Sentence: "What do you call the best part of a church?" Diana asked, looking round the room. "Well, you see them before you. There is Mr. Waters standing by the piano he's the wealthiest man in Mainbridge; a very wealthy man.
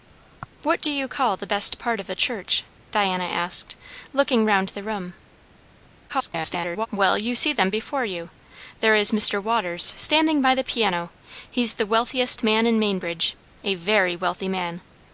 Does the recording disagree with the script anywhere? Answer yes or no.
yes